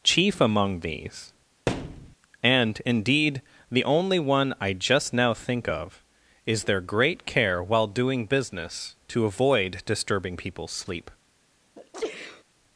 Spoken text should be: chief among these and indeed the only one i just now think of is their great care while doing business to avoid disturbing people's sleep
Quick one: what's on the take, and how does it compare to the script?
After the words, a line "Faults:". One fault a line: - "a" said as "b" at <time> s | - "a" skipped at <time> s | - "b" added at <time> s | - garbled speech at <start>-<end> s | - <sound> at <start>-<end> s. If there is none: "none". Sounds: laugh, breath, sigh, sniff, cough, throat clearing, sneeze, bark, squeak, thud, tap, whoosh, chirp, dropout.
chief among these and indeed the only one i just now think of is their great care while doing business to avoid disturbing people's sleep
Faults:
- thud at 1.7-2.2 s
- sneeze at 11.8-12.4 s